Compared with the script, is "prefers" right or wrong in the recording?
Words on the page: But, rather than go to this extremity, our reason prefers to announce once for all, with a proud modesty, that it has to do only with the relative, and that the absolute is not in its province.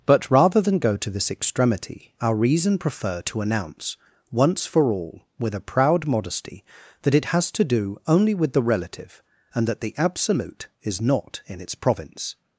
wrong